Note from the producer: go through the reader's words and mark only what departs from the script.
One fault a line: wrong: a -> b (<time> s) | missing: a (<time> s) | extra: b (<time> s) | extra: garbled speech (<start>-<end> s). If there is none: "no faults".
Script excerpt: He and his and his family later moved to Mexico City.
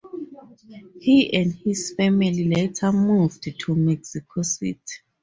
missing: and his (1.9 s)